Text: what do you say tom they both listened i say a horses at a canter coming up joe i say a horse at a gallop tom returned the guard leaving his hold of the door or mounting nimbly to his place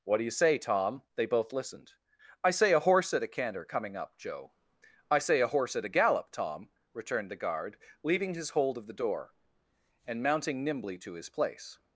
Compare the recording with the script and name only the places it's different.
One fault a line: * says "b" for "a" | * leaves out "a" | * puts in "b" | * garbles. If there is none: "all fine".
* says "horse" for "horses"
* says "and" for "or"